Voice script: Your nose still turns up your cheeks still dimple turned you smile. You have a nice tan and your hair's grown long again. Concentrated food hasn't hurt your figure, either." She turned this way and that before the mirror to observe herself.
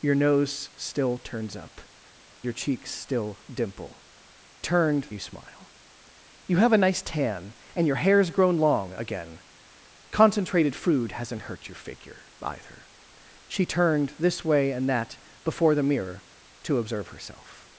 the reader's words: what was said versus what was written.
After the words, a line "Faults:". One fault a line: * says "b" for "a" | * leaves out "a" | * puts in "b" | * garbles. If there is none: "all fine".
Your nose still turns up your cheeks still dimple turned you smile. You have a nice tan and your hair's grown long again. Concentrated food hasn't hurt your figure, either." She turned this way and that before the mirror to observe herself.
Faults:
all fine